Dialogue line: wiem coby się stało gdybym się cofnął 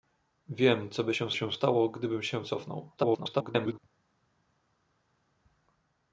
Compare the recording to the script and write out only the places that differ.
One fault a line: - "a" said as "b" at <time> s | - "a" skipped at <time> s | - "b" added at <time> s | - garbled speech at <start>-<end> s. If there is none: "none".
- "się" added at 1.3 s
- garbled speech at 3.0-3.8 s